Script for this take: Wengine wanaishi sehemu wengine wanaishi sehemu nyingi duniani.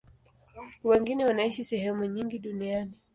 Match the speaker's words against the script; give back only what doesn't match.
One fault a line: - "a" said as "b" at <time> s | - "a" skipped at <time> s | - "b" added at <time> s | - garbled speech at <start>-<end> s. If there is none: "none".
- "wengine wanaishi sehemu" skipped at 2.0 s